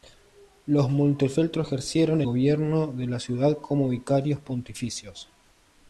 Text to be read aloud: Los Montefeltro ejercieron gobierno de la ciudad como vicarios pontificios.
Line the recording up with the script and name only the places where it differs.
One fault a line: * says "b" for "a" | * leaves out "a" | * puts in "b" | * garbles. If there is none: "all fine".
all fine